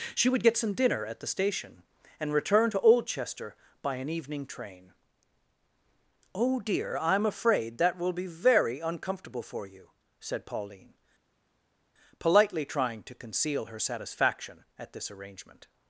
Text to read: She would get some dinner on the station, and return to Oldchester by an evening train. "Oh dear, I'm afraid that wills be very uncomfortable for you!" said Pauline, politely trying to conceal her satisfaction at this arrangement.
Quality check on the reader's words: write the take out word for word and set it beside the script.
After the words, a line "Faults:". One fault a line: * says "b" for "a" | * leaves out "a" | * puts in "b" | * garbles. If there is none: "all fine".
She would get some dinner at the station, and return to Oldchester by an evening train. "Oh dear, I'm afraid that will be very uncomfortable for you!" said Pauline, politely trying to conceal her satisfaction at this arrangement.
Faults:
* says "at" for "on"
* says "will" for "wills"